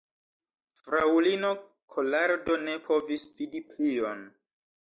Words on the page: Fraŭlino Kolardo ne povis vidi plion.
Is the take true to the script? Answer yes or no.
yes